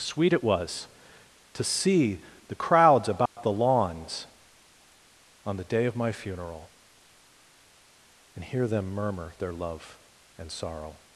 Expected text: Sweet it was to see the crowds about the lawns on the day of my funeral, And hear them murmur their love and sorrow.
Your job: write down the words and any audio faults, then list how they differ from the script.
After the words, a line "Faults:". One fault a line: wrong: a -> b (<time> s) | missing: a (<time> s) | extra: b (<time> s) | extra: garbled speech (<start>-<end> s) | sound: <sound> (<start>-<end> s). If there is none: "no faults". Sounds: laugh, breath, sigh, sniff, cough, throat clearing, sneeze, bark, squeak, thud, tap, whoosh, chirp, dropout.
Sweet it was to see the crowds about the lawns on the day of my funeral, And hear them murmur their love and sorrow.
Faults:
sound: dropout (3.3-3.4 s)